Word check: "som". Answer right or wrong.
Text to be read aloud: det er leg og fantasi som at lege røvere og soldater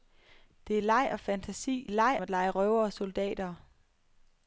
wrong